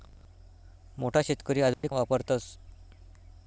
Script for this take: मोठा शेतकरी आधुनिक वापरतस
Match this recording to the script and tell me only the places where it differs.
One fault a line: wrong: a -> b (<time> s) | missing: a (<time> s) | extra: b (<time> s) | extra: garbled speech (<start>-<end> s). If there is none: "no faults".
no faults